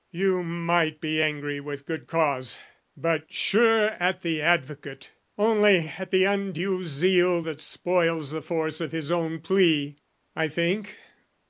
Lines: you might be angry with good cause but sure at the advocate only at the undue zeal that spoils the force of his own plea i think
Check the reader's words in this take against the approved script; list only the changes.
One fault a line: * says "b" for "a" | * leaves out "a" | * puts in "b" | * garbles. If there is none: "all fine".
all fine